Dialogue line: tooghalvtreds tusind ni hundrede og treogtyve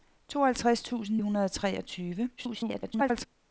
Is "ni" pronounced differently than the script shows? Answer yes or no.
yes